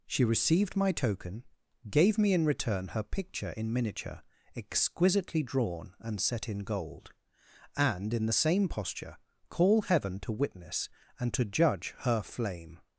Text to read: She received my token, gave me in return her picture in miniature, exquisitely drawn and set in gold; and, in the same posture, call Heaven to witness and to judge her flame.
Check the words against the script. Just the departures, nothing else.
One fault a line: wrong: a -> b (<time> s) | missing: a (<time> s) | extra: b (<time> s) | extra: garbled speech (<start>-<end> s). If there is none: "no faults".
no faults